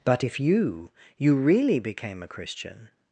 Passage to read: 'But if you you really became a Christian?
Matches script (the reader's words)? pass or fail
pass